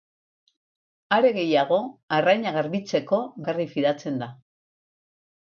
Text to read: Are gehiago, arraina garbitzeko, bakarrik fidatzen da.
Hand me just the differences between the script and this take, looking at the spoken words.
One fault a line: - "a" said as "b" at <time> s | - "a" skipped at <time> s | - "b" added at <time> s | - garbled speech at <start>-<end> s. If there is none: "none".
none